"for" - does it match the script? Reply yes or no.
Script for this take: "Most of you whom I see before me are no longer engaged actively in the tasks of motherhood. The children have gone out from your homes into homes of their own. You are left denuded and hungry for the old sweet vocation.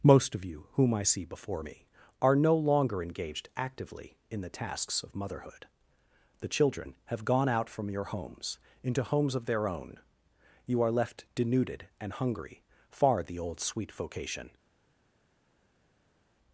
no